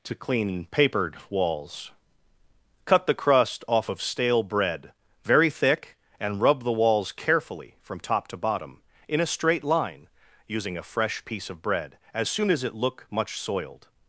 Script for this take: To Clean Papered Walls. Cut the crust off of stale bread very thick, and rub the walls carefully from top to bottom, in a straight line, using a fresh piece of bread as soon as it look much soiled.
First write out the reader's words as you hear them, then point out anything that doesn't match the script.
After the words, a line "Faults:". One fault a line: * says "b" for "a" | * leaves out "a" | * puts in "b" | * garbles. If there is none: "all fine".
To Clean Papered Walls. Cut the crust off of stale bread very thick, and rub the walls carefully from top to bottom, in a straight line, using a fresh piece of bread as soon as it look much soiled.
Faults:
all fine